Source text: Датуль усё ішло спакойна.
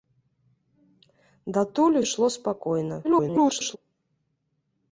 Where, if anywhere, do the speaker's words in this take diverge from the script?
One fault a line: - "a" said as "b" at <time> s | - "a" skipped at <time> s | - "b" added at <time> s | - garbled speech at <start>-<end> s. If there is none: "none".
- "усё" skipped at 2.0 s
- garbled speech at 3.0-3.8 s